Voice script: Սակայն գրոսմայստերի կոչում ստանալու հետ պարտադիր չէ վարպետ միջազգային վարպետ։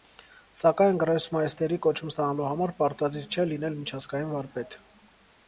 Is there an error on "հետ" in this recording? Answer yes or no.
yes